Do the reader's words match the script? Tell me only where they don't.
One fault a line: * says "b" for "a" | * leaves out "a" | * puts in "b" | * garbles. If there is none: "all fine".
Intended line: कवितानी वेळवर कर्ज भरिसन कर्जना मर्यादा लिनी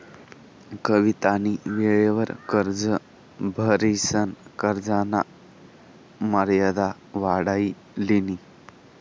* puts in "वाढाई"